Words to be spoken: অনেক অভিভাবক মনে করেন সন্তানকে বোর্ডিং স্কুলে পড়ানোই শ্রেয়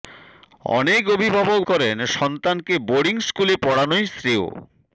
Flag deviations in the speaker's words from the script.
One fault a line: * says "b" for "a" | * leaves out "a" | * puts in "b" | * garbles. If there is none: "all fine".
* leaves out "মনে"